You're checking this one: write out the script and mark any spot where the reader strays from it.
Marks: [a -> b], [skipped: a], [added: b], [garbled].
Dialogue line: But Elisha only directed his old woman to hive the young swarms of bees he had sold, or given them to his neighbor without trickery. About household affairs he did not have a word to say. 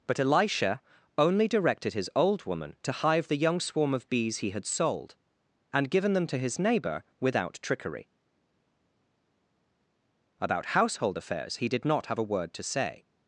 But Elisha only directed his old woman to hive the young [swarms -> swarm] of bees he had sold, [or -> and] given them to his neighbor without trickery. About household affairs he did not have a word to say.